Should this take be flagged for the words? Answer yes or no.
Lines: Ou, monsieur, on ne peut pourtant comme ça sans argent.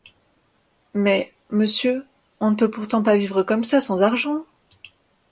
yes